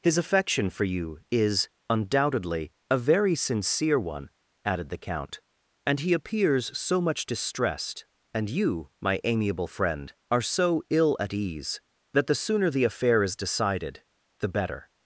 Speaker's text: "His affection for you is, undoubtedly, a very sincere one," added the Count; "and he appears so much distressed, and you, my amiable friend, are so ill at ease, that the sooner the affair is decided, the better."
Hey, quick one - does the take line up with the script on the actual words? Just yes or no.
yes